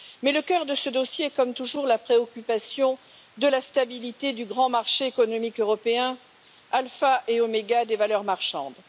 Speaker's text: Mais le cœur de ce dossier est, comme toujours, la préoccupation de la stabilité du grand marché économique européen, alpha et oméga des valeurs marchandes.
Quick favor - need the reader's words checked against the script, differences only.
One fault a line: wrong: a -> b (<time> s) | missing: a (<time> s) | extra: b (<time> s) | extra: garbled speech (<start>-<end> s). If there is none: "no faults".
no faults